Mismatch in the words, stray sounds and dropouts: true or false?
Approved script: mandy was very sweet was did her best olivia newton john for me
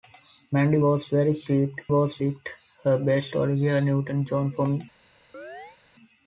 true